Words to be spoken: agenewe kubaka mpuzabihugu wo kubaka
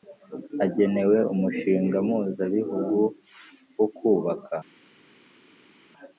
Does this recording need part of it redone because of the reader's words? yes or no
yes